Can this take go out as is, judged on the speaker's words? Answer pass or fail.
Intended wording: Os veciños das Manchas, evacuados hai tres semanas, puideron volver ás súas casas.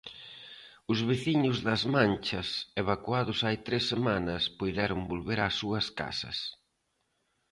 pass